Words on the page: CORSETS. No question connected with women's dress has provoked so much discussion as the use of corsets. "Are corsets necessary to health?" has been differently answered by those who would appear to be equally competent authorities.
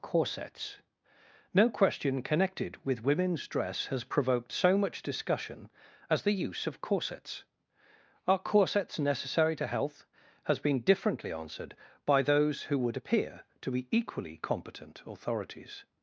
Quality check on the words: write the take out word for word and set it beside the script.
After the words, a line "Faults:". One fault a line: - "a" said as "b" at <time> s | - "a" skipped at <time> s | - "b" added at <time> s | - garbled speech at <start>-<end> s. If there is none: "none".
CORSETS. No question connected with women's dress has provoked so much discussion as the use of corsets. "Are corsets necessary to health?" has been differently answered by those who would appear to be equally competent authorities.
Faults:
none